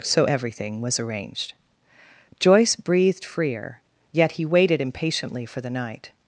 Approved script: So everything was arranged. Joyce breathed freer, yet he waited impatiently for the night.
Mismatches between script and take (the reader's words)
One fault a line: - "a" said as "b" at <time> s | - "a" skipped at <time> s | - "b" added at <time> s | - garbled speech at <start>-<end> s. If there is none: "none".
none